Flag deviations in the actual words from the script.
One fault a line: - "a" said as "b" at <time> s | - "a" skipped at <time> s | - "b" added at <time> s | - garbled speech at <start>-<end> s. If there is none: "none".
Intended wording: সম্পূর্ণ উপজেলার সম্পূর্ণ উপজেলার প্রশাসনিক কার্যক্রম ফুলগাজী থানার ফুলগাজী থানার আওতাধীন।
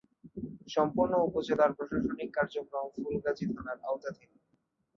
- "সম্পূর্ণ উপজেলার" skipped at 1.7 s
- "ফুলগাজী থানার" skipped at 3.8 s